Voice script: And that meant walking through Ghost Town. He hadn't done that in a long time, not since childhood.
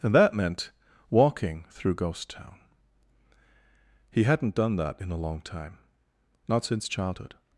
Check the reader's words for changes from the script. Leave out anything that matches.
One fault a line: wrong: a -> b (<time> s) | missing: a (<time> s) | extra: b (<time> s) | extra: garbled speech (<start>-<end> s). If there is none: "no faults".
no faults